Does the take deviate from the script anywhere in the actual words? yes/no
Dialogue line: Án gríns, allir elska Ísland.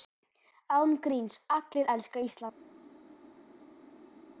no